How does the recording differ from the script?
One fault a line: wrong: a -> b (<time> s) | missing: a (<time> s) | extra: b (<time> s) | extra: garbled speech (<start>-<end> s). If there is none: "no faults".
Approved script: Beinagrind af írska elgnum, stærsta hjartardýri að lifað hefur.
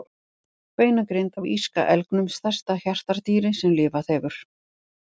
wrong: að -> sem (3.6 s)